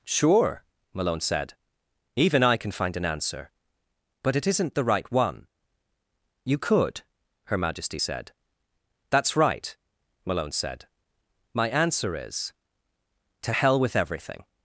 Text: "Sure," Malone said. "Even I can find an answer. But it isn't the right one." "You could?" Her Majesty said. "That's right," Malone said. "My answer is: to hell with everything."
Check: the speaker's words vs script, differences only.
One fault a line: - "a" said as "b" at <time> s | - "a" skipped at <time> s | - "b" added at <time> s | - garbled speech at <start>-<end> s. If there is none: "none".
none